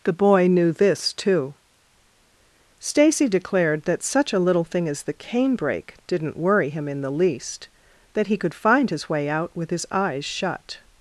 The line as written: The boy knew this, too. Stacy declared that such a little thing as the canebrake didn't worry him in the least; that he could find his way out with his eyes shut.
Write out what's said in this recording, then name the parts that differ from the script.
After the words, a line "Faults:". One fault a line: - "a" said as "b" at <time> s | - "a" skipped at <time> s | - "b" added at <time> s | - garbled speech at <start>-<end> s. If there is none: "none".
The boy knew this, too. Stacy declared that such a little thing as the canebrake didn't worry him in the least; that he could find his way out with his eyes shut.
Faults:
none